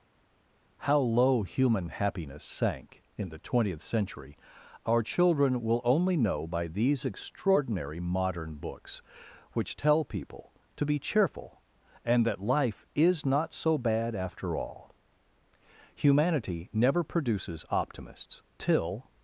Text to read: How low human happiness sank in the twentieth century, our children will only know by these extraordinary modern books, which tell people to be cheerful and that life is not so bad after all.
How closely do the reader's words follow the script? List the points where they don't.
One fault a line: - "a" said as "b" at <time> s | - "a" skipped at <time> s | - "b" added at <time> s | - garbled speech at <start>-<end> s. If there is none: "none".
- "Humanity never produces optimists till" added at 16.0 s